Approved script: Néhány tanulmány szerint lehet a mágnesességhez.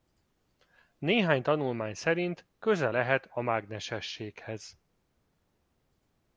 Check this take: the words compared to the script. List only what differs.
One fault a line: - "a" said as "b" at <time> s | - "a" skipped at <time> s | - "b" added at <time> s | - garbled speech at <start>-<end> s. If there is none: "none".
- "köze" added at 2.6 s